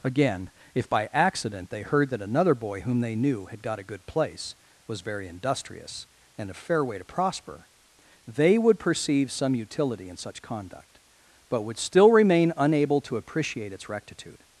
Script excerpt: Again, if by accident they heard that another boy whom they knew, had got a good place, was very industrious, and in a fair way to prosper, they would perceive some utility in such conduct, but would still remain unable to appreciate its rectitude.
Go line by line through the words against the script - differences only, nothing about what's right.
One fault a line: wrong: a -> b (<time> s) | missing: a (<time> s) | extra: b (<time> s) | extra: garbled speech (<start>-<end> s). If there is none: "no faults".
missing: in (6.5 s)